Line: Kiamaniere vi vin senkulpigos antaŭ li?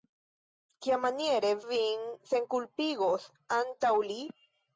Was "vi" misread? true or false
true